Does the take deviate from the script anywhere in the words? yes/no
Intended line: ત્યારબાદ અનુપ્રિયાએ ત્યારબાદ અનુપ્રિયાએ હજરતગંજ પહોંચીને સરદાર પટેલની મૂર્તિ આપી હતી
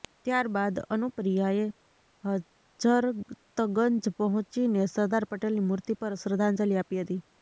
yes